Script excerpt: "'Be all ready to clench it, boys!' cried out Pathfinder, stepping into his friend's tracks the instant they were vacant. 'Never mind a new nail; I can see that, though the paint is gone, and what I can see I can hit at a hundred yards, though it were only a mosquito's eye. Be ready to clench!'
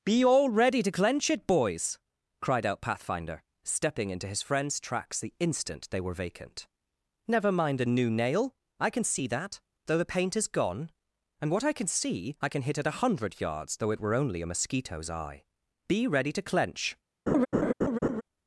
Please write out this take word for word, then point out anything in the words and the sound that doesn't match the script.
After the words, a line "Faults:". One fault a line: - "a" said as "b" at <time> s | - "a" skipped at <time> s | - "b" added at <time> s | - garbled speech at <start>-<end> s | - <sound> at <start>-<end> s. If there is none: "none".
"'Be all ready to clench it, boys!' cried out Pathfinder, stepping into his friend's tracks the instant they were vacant. 'Never mind a new nail; I can see that, though the paint is gone, and what I can see I can hit at a hundred yards, though it were only a mosquito's eye. Be ready to clench!'
Faults:
- laugh at 17.3-18.2 s